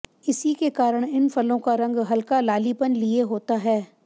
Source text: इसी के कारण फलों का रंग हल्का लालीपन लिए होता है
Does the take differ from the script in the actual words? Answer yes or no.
yes